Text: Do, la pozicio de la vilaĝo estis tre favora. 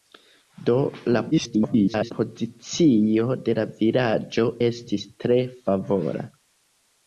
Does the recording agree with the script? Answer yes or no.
no